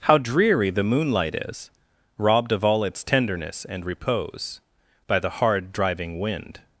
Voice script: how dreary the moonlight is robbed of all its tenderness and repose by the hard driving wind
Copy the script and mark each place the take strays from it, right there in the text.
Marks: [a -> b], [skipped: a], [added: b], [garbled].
how dreary the moonlight is robbed of all its tenderness and repose by the hard driving wind